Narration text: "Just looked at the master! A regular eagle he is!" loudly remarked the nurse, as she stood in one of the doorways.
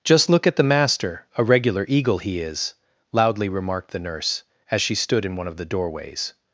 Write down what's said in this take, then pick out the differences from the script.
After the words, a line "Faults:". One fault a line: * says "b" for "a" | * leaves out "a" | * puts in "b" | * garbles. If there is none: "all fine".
"Just look at the master! A regular eagle he is!" loudly remarked the nurse, as she stood in one of the doorways.
Faults:
* says "look" for "looked"